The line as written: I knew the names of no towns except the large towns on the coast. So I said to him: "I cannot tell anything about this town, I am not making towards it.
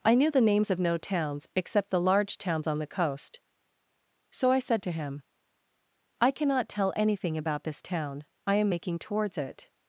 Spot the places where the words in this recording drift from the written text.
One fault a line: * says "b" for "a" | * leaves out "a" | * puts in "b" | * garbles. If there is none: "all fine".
* leaves out "not"